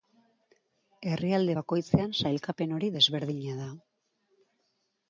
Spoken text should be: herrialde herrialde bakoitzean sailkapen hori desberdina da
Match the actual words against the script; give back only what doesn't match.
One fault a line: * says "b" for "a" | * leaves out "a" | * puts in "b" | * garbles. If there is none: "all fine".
* leaves out "herrialde"